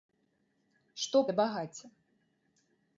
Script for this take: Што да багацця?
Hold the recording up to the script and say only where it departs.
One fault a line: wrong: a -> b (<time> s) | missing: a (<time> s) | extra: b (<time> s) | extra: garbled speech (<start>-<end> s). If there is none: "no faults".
no faults